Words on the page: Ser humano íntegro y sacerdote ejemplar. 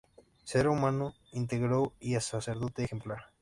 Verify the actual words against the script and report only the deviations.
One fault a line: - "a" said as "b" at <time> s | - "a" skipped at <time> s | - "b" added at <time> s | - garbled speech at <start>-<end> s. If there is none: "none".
none